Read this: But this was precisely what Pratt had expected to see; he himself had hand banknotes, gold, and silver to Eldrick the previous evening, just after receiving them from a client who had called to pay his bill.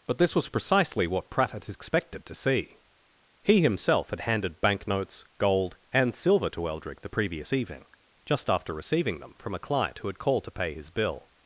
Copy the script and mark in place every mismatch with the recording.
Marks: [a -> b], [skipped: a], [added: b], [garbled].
But this was precisely what Pratt had expected to see; he himself had [hand -> handed] banknotes, gold, and silver to Eldrick the previous evening, just after receiving them from a client who had called to pay his bill.